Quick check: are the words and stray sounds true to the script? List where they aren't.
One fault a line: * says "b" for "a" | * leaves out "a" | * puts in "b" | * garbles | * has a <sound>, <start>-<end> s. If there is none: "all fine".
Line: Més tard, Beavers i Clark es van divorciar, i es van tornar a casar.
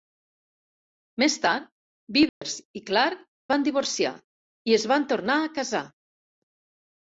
* has a dropout, 2.3-2.4 s
* leaves out "es"